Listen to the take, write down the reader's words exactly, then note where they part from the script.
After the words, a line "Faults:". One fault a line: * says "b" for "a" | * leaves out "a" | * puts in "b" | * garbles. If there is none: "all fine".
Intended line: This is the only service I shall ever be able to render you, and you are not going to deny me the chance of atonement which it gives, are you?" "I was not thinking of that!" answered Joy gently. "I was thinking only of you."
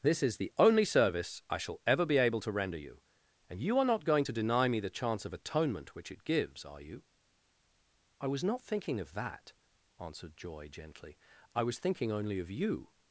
This is the only service I shall ever be able to render you, and you are not going to deny me the chance of atonement which it gives, are you?" "I was not thinking of that!" answered Joy gently. "I was thinking only of you."
Faults:
all fine